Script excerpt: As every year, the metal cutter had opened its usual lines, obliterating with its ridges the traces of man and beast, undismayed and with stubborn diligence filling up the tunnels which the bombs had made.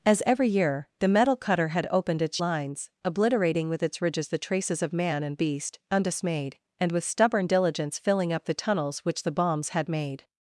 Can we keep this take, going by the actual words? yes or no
no